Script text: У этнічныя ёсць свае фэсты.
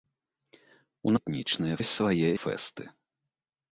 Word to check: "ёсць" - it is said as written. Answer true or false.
true